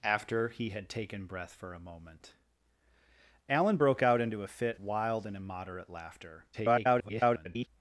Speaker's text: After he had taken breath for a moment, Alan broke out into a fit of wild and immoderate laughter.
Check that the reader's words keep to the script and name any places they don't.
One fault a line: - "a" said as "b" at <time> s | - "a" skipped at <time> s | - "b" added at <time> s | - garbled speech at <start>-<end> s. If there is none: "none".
- "of" skipped at 4.8 s
- garbled speech at 6.5-7.7 s